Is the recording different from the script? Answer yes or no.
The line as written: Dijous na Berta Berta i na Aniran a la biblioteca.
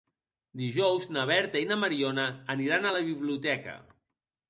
yes